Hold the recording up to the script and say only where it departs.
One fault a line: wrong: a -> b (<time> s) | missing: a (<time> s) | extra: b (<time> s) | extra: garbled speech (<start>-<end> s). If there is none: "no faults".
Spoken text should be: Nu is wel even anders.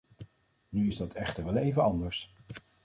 extra: dat echter (1.0 s)